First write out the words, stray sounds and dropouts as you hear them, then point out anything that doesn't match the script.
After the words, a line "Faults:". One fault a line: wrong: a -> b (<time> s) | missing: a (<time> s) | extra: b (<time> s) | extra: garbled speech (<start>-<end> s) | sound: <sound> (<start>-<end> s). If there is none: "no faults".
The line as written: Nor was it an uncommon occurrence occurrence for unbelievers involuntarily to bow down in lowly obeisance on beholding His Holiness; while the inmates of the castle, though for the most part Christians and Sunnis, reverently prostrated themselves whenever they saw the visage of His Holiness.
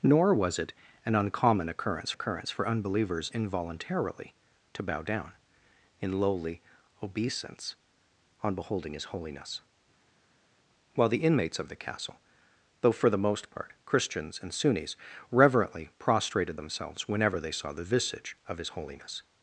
Nor was it an uncommon occurrence occurrence for unbelievers involuntarily to bow down in lowly obeisance on beholding His Holiness; while the inmates of the castle, though for the most part Christians and Sunnis, reverently prostrated themselves whenever they saw the visage of His Holiness.
Faults:
no faults